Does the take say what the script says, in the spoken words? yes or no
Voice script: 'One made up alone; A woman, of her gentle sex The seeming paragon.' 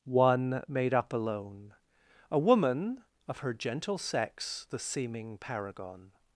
yes